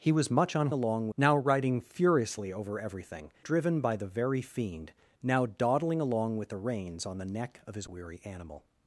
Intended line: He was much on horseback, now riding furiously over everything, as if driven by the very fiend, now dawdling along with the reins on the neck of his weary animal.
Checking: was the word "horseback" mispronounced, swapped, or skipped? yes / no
yes